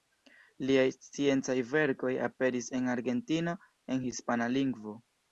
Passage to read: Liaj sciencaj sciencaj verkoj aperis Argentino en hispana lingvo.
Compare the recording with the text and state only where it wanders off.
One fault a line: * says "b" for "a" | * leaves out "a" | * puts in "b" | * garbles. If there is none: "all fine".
* leaves out "sciencaj"
* puts in "en"